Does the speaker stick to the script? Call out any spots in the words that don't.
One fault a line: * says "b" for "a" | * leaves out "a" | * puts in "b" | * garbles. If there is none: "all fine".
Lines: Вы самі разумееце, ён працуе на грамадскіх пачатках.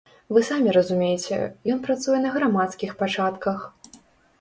all fine